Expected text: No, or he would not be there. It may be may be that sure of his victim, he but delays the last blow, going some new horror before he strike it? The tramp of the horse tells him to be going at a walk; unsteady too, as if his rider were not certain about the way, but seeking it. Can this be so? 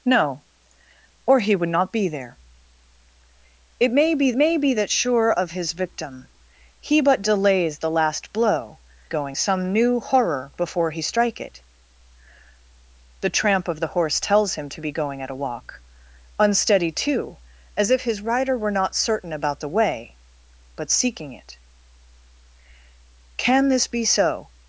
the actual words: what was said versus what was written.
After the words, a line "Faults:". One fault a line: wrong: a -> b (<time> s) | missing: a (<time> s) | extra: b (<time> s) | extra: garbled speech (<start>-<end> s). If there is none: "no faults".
No, or he would not be there. It may be may be that sure of his victim, he but delays the last blow, going some new horror before he strike it? The tramp of the horse tells him to be going at a walk; unsteady too, as if his rider were not certain about the way, but seeking it. Can this be so?
Faults:
no faults